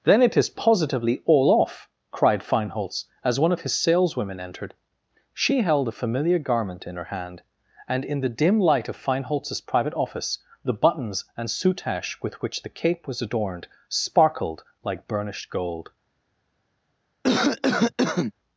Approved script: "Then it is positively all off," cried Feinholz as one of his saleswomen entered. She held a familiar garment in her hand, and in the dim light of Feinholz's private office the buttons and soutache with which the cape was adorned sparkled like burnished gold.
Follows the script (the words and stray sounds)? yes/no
no